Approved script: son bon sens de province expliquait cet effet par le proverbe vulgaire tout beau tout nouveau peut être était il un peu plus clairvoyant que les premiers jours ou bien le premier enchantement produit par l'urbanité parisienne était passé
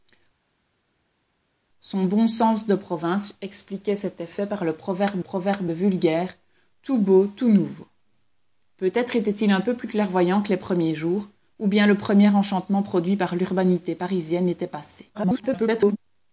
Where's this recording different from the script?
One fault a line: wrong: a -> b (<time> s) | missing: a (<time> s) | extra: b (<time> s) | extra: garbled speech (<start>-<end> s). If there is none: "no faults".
extra: proverbe (5.2 s)
extra: garbled speech (15.1-16.0 s)